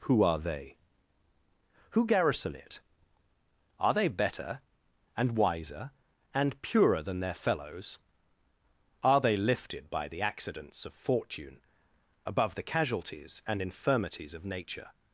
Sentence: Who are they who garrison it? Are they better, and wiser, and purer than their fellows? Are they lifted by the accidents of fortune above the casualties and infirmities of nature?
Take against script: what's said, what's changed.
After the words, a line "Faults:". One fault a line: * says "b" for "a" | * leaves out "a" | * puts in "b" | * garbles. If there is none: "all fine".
Who are they who garrison it? Are they better, and wiser, and purer than their fellows? Are they lifted by the accidents of fortune above the casualties and infirmities of nature?
Faults:
all fine